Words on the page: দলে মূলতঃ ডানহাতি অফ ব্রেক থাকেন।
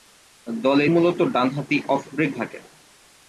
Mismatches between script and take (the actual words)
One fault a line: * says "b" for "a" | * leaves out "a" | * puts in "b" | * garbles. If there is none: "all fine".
all fine